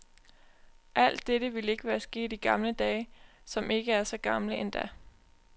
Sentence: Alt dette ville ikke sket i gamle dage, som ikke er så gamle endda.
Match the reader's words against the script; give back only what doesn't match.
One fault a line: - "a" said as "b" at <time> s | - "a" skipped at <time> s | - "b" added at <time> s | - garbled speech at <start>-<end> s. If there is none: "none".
- "være" added at 1.8 s